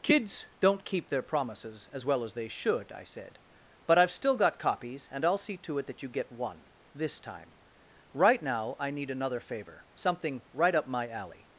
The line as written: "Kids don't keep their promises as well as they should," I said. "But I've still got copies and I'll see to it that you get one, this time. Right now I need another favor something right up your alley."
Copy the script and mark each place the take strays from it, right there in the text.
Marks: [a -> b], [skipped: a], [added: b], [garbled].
"Kids don't keep their promises as well as they should," I said. "But I've still got copies and I'll see to it that you get one, this time. Right now I need another favor something right up [your -> my] alley."